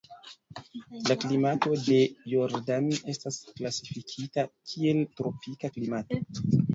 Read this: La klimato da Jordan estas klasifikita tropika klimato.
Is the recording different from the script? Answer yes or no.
yes